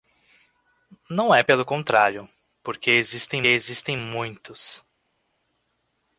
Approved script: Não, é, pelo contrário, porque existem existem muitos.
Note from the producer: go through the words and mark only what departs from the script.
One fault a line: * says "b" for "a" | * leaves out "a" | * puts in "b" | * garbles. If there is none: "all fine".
all fine